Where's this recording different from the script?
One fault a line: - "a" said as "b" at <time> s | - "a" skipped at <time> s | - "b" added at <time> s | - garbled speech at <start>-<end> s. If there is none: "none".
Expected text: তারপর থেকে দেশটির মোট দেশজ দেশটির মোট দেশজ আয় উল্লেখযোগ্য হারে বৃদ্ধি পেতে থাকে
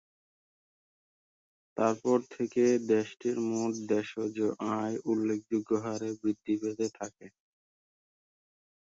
- "দেশটির মোট দেশজ" skipped at 4.3 s